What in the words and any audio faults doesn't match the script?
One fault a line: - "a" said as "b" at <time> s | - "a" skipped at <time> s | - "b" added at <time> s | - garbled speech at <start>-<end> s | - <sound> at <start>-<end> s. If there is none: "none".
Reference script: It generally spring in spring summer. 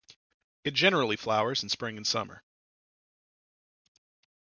- "spring" said as "flowers" at 1.1 s
- "and" added at 1.9 s